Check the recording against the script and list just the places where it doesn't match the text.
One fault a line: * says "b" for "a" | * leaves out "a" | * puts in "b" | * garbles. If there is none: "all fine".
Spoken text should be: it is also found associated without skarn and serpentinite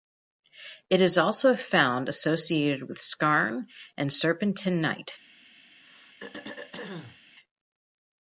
* says "with" for "without"